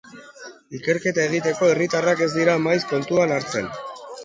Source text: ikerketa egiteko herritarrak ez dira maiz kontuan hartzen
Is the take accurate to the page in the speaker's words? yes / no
yes